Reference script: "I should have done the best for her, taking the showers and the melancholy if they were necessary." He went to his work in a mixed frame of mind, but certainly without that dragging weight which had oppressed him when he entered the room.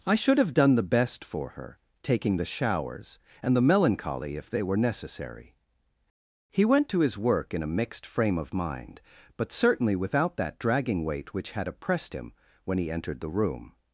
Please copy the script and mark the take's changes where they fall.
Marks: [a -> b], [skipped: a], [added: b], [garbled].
"I should have done the best for her, taking the showers and the melancholy if they were necessary." He went to his work in a mixed frame of mind, but certainly without that dragging weight which had oppressed him when he entered the room.